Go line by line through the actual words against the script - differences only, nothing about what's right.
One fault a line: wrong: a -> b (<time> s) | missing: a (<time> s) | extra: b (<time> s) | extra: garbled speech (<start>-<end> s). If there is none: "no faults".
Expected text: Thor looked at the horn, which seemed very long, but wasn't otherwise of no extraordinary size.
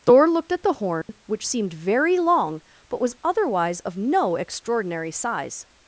wrong: wasn't -> was (3.0 s)